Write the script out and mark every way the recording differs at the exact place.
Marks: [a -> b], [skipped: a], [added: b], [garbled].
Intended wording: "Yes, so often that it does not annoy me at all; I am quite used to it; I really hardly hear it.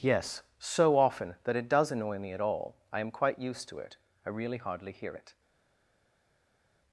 "Yes, so often that it does [skipped: not] annoy me at all; I am quite used to it; I really hardly hear it.